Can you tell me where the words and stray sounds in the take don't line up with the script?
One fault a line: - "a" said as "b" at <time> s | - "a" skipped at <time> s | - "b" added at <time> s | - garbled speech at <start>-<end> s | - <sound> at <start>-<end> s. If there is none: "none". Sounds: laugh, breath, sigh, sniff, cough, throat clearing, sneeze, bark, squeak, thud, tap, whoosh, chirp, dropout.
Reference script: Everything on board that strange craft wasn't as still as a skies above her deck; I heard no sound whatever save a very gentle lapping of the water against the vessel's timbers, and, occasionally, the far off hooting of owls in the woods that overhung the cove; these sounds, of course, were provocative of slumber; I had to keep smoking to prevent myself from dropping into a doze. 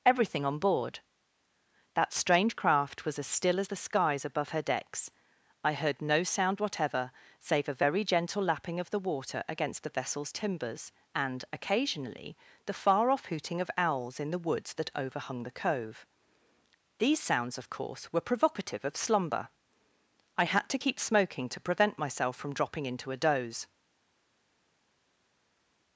- "wasn't" said as "was" at 3.0 s
- "a" said as "the" at 3.6 s
- "deck" said as "decks" at 4.6 s